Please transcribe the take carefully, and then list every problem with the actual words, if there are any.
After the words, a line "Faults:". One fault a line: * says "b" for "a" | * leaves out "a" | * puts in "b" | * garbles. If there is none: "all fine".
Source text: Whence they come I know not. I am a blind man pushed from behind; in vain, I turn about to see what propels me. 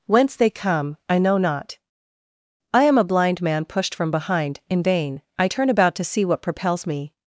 Whence they come I know not. I am a blind man pushed from behind; in vain, I turn about to see what propels me.
Faults:
all fine